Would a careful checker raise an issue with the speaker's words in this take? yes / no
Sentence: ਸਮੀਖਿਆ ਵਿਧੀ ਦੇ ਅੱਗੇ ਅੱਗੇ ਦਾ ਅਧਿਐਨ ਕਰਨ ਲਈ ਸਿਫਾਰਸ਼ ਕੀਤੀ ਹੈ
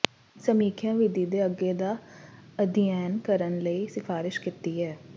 yes